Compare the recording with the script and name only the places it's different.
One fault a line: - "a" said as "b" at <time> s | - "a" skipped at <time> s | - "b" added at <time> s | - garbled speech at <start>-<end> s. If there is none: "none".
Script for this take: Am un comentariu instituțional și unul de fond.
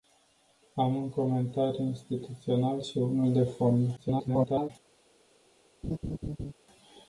- garbled speech at 4.0-4.7 s